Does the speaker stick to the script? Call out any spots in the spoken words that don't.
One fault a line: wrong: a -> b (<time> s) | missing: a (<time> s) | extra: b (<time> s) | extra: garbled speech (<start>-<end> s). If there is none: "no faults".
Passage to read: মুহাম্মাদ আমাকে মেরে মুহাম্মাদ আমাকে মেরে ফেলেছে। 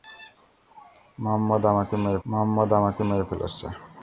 no faults